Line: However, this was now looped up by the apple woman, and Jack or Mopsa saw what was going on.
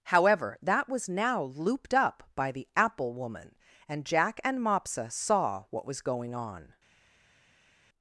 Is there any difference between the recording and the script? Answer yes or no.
yes